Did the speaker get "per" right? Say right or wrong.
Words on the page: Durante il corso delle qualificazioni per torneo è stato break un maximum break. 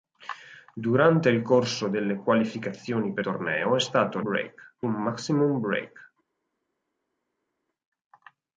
right